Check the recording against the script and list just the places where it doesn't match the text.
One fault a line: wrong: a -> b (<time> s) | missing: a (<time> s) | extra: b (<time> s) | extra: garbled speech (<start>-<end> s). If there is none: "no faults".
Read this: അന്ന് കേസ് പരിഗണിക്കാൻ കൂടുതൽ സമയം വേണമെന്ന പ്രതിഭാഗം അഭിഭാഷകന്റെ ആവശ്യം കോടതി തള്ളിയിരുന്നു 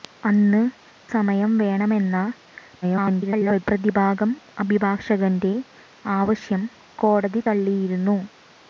missing: കേസ് പരിഗണിക്കാൻ കൂടുതൽ (0.6 s)
extra: garbled speech (2.8-3.6 s)